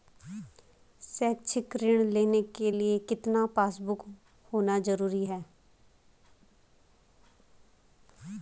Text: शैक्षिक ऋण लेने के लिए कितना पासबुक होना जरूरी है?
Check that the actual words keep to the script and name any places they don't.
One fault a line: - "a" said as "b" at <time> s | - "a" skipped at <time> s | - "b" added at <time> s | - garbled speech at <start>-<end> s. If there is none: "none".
none